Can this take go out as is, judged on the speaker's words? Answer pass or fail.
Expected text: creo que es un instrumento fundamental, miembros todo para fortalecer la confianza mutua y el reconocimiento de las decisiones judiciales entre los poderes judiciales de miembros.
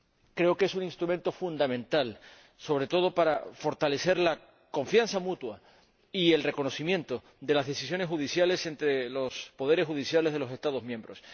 fail